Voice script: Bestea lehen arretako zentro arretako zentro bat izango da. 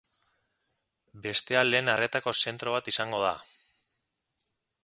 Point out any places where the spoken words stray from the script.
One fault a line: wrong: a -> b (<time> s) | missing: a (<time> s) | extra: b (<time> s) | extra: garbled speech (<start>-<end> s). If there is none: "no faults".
missing: arretako zentro (2.8 s)